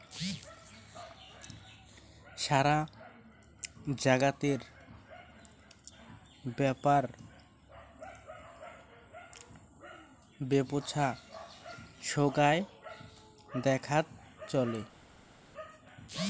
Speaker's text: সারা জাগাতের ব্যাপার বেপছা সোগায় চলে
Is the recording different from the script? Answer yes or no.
yes